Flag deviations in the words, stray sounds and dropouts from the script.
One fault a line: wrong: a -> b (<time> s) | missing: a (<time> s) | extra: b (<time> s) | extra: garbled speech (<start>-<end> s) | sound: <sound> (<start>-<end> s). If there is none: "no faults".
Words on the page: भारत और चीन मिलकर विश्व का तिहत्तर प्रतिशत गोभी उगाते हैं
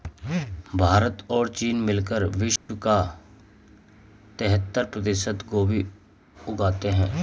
sound: dropout (2.6-2.7 s)